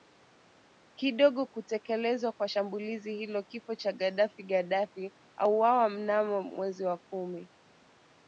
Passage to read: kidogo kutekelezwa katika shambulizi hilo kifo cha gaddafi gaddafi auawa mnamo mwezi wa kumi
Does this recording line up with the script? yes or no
no